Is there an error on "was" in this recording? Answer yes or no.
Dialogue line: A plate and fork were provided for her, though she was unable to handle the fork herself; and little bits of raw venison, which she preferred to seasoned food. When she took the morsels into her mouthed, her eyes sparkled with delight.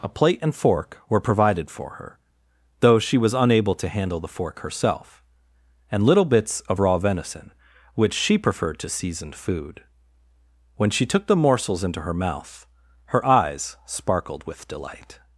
no